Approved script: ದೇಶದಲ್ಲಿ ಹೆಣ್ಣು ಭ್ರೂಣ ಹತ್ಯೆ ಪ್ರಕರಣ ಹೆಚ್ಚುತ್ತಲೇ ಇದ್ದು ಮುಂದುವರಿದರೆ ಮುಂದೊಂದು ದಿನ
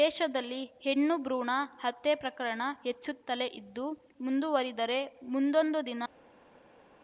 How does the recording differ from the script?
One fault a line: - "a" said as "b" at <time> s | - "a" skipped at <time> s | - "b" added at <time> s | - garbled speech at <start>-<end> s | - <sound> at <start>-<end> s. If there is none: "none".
none